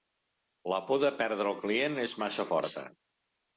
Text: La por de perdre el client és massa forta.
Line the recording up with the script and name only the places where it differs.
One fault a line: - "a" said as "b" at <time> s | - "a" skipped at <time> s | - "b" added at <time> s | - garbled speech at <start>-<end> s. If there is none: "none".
none